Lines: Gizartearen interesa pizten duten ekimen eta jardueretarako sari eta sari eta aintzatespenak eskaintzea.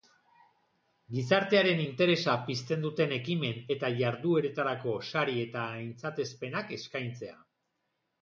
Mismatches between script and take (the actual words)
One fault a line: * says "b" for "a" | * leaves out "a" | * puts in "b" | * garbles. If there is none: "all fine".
* leaves out "sari eta"